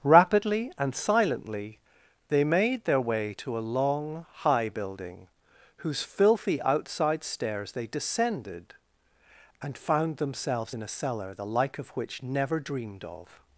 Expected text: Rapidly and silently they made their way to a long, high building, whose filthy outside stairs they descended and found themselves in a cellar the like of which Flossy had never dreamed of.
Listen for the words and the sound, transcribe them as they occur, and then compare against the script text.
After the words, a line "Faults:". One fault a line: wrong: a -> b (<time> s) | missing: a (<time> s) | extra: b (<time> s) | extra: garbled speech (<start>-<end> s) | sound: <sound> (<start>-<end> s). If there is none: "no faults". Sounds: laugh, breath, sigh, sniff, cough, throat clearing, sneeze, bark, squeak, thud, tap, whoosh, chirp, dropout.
Rapidly and silently they made their way to a long, high building, whose filthy outside stairs they descended and found themselves in a cellar the like of which never dreamed of.
Faults:
missing: Flossy had (12.2 s)